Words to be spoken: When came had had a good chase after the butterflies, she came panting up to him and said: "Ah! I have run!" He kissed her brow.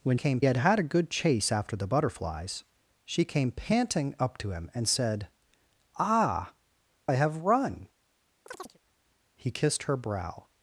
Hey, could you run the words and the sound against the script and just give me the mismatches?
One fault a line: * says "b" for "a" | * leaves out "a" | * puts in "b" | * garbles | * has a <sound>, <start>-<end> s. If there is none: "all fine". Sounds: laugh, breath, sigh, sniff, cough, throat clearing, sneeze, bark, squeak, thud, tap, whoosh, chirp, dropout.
* has a chirp, 8.5-8.8 s